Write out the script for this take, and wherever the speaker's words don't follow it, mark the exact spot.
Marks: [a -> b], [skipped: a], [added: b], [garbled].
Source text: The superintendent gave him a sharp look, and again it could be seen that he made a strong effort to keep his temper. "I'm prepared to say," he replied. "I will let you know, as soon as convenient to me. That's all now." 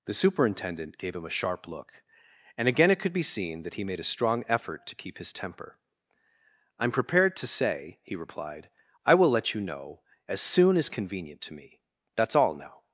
The superintendent gave him a sharp look, and again it could be seen that he made a strong effort to keep his temper. "I'm prepared to say," he replied. "I will let you know, as soon as convenient to me. That's all now."